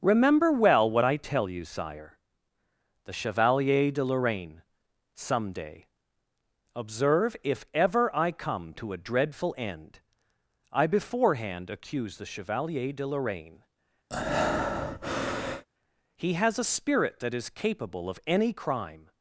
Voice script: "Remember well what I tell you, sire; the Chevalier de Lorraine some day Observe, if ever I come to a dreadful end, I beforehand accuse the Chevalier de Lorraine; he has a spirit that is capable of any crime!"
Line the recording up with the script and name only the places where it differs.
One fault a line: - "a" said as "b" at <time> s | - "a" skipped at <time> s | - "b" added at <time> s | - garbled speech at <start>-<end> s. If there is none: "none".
none